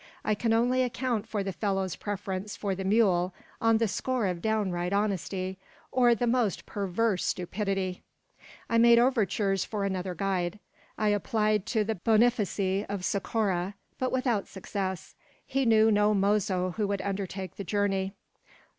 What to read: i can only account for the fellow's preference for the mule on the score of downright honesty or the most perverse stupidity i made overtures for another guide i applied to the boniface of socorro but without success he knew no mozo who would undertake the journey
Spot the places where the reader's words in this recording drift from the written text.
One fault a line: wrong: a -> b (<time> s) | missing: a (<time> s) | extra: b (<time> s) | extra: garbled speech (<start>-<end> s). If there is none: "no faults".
no faults